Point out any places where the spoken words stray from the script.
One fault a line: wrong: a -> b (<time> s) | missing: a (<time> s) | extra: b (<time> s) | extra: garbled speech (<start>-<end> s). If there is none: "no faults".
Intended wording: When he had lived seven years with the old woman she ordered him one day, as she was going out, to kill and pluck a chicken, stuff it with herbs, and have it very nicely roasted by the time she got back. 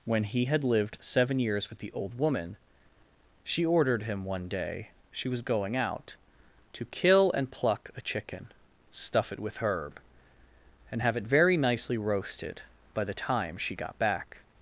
missing: as (4.9 s)
wrong: herbs -> herb (9.6 s)